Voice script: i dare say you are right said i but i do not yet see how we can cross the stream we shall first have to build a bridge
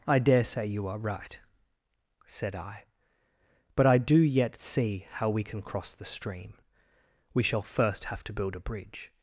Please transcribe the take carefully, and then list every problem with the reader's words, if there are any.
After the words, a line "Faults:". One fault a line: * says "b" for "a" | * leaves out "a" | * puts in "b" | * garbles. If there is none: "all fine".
i dare say you are right said i but i do yet see how we can cross the stream we shall first have to build a bridge
Faults:
* leaves out "not"